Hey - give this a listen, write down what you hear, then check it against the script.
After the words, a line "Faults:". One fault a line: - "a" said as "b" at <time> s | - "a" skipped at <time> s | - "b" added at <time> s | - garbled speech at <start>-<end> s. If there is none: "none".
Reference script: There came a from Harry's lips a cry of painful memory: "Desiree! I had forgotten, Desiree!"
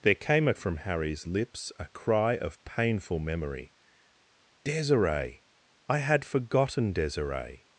There came a from Harry's lips a cry of painful memory: "Desiree! I had forgotten, Desiree!"
Faults:
none